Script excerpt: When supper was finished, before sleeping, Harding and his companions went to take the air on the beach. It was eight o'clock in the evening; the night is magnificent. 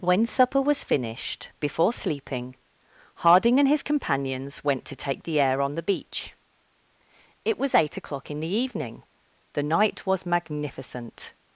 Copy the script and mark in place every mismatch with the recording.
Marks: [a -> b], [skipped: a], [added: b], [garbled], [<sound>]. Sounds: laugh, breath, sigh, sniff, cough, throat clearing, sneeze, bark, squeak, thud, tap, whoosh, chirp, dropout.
When supper was finished, before sleeping, Harding and his companions went to take the air on the beach. It was eight o'clock in the evening; the night [is -> was] magnificent.